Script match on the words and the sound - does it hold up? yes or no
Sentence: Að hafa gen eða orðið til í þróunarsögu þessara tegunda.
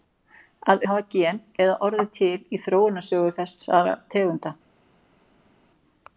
yes